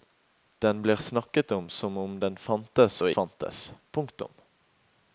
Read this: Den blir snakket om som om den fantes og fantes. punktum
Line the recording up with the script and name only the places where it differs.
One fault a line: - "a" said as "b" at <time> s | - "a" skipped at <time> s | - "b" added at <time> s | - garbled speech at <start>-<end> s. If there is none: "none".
none